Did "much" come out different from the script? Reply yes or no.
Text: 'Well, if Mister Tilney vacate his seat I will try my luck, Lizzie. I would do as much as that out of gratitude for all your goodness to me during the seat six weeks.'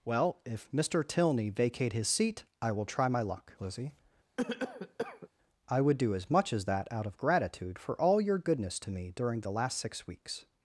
no